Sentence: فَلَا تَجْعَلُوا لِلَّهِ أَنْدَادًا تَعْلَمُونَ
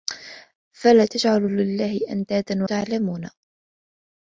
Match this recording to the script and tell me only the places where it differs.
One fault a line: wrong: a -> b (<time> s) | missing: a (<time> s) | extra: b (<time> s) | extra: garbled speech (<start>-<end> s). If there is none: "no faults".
no faults